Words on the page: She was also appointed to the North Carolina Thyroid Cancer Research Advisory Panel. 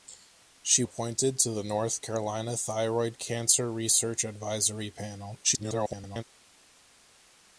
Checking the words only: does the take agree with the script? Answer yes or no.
no